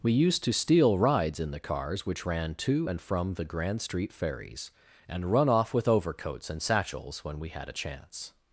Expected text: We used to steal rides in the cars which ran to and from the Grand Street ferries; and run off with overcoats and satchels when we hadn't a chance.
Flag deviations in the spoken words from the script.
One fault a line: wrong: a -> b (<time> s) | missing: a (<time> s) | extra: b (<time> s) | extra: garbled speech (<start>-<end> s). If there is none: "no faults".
wrong: hadn't -> had (7.5 s)